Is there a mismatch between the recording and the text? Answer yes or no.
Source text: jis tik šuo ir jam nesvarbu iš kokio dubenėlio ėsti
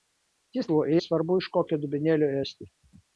yes